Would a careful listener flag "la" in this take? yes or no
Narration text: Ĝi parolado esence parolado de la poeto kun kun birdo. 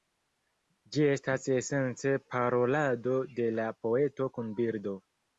no